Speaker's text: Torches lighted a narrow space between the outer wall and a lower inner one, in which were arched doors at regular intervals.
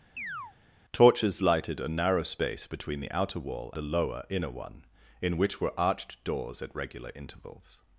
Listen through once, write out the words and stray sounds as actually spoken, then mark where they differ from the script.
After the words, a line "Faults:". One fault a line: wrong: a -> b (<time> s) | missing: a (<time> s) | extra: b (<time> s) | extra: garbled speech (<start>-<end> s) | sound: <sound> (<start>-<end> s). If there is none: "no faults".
Torches lighted a narrow space between the outer wall a lower inner one, in which were arched doors at regular intervals.
Faults:
sound: chirp (0.2-0.5 s)
missing: and (3.7 s)